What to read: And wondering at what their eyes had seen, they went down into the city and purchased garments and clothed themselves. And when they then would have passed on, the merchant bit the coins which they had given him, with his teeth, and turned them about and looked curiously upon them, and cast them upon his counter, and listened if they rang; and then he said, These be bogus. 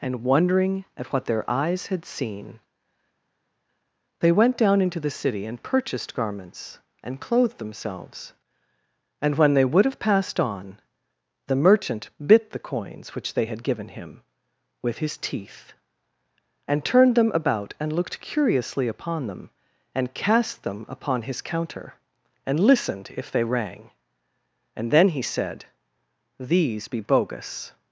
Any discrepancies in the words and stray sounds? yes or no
yes